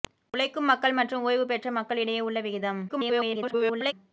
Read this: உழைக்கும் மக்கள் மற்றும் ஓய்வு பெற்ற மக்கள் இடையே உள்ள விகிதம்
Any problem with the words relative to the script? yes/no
yes